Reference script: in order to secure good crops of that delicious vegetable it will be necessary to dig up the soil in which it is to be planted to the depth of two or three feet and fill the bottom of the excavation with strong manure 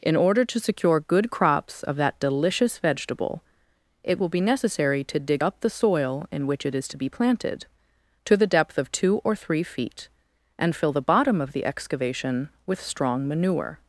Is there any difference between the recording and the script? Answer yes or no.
no